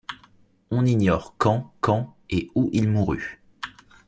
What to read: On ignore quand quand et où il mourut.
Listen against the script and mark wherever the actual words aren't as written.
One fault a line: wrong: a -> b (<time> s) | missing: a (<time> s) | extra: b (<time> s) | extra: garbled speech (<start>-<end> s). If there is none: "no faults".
no faults